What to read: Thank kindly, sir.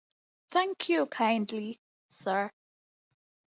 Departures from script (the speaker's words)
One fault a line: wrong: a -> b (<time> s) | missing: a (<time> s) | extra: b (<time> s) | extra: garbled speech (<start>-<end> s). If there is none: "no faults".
extra: you (0.9 s)